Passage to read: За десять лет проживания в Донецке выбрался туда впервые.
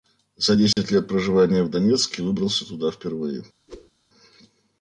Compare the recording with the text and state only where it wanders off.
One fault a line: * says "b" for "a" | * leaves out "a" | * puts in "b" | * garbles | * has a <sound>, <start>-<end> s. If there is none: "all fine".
* has a dropout, 0.7-0.8 s
* has a whoosh, 3.7-3.9 s